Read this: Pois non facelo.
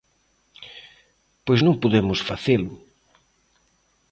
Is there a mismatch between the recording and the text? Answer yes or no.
yes